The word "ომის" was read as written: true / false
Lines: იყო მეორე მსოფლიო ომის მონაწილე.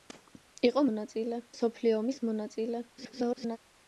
true